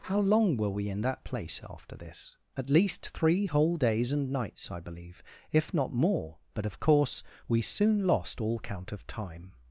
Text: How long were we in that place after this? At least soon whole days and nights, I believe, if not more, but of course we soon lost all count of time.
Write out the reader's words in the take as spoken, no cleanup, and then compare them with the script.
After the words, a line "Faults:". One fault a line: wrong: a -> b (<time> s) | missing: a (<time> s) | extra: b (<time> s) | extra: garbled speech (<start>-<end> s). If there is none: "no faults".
How long were we in that place after this? At least three whole days and nights, I believe, if not more, but of course we soon lost all count of time.
Faults:
wrong: soon -> three (3.1 s)